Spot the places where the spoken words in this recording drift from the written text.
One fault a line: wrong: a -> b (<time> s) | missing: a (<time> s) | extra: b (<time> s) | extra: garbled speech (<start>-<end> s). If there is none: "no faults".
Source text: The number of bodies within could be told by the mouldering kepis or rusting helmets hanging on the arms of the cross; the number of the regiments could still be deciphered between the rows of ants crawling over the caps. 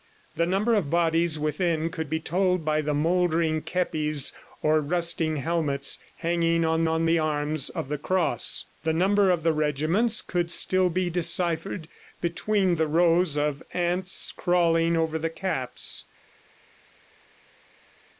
extra: on (6.8 s)